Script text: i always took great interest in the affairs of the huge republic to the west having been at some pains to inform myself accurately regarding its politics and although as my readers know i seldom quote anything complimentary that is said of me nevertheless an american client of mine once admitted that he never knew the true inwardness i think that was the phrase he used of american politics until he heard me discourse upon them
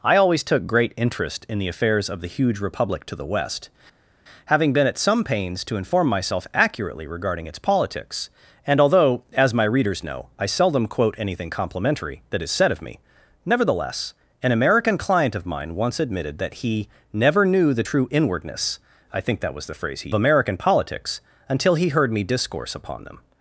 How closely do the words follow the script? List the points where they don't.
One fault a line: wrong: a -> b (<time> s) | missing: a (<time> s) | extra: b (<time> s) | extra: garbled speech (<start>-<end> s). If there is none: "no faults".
missing: used of (20.1 s)